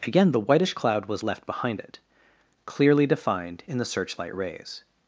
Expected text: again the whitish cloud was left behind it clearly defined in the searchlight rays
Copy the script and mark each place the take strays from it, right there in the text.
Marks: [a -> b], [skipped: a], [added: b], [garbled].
again the whitish cloud was left behind it clearly defined in the searchlight rays